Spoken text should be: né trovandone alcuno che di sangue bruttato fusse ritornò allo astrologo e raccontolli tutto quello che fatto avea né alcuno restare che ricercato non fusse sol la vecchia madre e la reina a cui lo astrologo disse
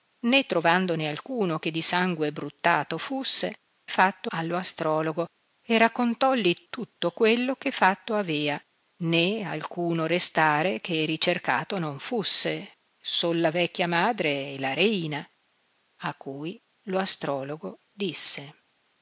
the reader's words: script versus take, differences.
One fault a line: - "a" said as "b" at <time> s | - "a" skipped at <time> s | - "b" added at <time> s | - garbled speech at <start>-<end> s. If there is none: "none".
- "ritornò" said as "fatto" at 3.9 s